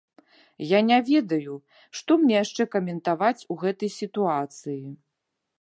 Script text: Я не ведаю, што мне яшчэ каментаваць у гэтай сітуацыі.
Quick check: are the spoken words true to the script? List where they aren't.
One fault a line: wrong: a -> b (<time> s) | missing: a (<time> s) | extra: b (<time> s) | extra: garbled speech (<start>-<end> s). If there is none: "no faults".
no faults